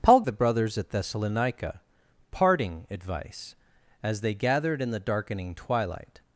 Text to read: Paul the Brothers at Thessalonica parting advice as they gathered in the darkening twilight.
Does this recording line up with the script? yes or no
yes